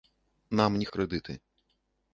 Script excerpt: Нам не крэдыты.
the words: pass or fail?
pass